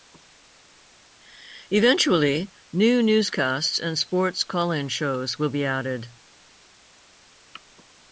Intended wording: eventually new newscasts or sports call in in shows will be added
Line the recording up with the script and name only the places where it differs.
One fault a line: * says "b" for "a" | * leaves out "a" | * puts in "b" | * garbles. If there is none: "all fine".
* says "and" for "or"
* leaves out "in"